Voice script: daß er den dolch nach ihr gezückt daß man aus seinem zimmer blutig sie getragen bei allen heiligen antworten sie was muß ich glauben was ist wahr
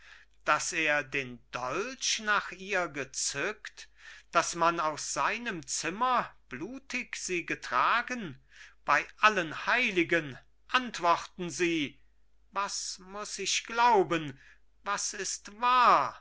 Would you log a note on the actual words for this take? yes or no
no